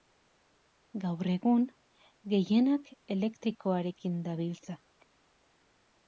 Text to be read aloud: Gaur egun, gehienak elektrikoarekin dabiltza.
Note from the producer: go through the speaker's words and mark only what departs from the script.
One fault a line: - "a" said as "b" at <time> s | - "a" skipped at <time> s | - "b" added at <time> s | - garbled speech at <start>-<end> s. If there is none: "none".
none